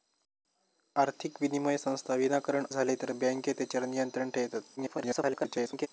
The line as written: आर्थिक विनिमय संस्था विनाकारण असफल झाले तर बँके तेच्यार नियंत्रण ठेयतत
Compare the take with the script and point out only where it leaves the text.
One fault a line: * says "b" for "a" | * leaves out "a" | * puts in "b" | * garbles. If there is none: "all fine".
* leaves out "असफल"
* garbles